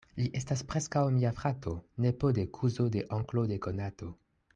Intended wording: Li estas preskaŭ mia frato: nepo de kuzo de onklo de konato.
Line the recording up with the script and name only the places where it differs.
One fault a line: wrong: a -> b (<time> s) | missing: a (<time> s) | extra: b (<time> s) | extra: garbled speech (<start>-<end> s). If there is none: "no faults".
no faults